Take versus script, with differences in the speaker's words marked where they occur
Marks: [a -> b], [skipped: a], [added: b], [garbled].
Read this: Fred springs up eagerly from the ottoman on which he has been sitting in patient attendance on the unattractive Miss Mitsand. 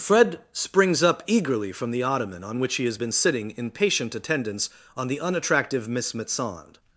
Fred springs up eagerly from the ottoman on which he has been sitting in patient attendance on the unattractive Miss Mitsand.